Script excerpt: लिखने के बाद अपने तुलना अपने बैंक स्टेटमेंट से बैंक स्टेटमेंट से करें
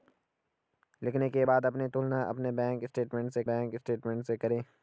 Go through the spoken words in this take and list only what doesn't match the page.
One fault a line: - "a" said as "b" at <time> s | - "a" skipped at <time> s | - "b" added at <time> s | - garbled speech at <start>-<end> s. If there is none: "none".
none